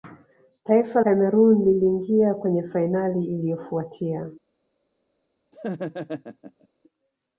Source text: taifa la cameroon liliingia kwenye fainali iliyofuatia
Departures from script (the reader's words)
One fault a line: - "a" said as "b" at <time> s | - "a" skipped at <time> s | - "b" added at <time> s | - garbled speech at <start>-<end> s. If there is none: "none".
- "la" skipped at 1.0 s